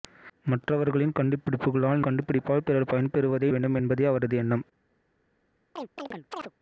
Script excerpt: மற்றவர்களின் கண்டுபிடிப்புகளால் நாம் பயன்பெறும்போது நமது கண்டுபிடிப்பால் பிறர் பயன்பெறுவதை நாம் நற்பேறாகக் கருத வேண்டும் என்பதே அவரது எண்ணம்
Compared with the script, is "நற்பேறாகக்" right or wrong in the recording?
wrong